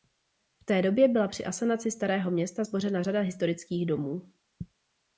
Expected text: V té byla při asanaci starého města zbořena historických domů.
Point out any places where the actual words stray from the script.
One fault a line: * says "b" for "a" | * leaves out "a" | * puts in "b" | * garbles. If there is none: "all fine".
* puts in "době"
* puts in "řada"